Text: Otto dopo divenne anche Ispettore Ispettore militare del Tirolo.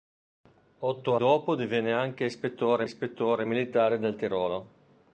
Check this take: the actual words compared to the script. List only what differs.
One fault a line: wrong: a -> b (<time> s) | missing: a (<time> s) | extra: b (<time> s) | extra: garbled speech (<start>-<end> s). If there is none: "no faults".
no faults